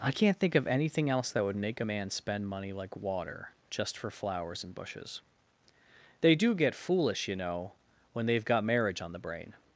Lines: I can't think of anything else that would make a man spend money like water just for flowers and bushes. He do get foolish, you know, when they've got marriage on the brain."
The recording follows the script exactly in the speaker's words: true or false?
false